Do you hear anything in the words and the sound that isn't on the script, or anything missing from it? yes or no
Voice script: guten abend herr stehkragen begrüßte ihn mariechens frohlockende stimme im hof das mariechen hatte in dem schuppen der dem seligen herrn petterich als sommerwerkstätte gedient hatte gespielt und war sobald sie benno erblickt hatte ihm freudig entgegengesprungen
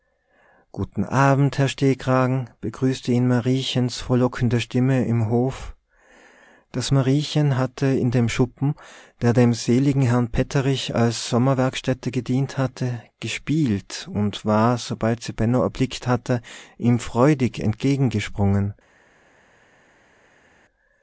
no